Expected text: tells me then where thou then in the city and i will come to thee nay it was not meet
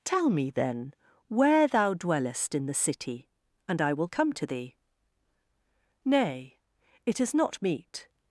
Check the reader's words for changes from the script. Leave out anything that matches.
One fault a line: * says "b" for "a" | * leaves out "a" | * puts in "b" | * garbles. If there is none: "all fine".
* says "tell" for "tells"
* says "dwellest" for "then"
* says "is" for "was"